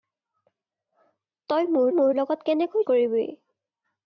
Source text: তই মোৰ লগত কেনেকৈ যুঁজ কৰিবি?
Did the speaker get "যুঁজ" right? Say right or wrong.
wrong